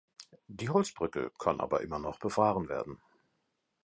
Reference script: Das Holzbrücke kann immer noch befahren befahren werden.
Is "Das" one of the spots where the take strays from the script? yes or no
yes